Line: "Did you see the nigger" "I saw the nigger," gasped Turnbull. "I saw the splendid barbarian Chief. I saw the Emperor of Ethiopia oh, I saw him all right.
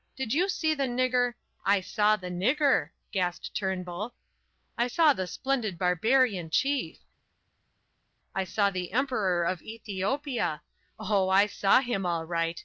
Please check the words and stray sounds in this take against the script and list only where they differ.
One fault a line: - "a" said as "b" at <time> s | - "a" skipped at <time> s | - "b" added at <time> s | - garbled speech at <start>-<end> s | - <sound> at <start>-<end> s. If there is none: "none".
none